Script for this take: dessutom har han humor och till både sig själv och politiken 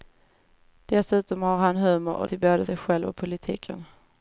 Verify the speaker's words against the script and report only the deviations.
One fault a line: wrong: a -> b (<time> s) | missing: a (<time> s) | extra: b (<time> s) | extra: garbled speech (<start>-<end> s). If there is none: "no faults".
no faults